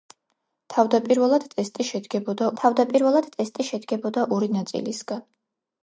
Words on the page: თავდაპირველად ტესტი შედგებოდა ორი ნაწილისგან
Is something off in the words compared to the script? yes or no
yes